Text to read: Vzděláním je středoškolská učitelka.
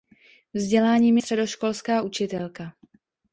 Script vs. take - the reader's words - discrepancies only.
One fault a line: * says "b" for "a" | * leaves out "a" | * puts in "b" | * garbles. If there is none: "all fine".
* leaves out "je"